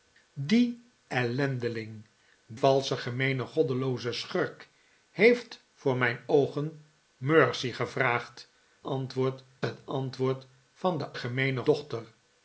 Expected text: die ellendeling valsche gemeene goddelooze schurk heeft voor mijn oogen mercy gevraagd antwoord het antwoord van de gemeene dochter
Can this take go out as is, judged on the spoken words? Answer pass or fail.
pass